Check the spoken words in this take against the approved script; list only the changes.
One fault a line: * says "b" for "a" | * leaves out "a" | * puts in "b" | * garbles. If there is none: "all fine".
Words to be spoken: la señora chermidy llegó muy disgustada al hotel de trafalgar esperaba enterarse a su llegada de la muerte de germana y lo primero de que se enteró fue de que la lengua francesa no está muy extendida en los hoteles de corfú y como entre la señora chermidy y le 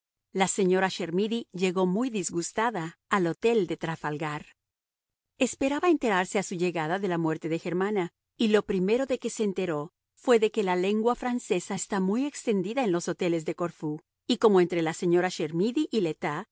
* leaves out "no"